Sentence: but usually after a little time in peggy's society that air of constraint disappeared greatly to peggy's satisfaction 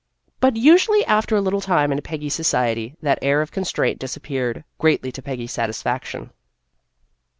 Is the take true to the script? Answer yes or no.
yes